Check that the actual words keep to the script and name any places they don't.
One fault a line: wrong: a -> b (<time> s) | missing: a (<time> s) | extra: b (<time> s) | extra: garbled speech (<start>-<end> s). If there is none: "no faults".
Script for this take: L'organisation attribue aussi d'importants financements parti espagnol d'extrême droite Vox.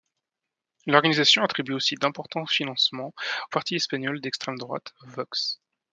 no faults